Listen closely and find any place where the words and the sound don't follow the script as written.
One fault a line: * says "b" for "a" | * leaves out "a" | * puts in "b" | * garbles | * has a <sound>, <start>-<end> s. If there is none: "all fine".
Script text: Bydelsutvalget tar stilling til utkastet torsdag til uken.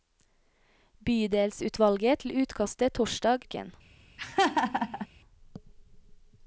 * leaves out "tar stilling"
* leaves out "til"
* has a laugh, 4.2-5.1 s